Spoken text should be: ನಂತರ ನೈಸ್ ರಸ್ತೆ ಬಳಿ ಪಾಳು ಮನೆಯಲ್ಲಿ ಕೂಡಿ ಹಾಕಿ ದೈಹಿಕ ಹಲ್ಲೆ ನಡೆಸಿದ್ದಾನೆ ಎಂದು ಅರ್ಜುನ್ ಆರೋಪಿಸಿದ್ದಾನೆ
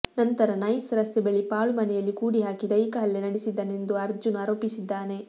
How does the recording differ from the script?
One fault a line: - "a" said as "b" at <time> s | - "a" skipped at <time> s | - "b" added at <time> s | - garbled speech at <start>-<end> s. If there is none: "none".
none